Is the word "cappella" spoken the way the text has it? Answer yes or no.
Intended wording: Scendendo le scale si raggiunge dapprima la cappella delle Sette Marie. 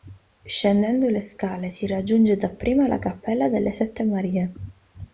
yes